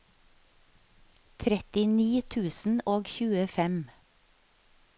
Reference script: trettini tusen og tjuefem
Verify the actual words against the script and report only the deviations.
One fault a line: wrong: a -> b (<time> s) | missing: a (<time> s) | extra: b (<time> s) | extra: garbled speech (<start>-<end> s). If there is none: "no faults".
no faults